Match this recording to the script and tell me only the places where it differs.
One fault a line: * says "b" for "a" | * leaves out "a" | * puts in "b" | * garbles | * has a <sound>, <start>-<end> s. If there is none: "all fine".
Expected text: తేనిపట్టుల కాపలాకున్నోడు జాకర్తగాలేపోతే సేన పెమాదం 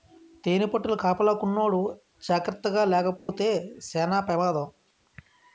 * has a dropout, 3.2-3.3 s